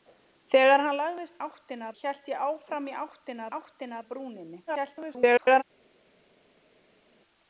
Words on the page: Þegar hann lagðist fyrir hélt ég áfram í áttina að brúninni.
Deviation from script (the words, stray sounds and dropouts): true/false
true